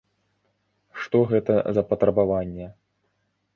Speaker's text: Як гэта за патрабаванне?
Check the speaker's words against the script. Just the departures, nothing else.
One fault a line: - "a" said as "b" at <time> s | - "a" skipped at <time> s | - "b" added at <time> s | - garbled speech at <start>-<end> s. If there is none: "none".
- "Як" said as "Што" at 1.0 s